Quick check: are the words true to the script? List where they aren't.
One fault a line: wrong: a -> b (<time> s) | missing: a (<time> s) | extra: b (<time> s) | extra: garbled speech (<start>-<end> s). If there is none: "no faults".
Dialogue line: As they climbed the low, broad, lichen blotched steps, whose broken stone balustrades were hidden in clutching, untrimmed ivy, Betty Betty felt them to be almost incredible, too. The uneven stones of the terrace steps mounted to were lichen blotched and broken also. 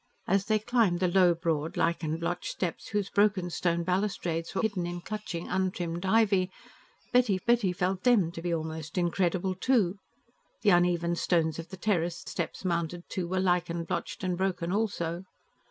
no faults